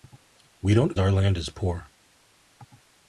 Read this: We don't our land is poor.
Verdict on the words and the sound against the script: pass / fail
pass